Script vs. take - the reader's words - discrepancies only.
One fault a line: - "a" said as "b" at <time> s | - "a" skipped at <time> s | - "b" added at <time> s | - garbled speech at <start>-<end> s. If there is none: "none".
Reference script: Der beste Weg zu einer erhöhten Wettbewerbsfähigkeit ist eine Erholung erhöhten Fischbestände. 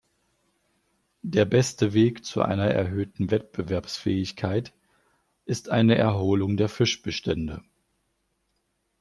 - "erhöhten" said as "der" at 6.6 s